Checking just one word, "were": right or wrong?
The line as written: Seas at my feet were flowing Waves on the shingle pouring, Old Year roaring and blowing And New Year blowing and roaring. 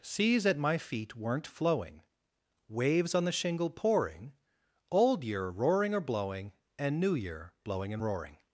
wrong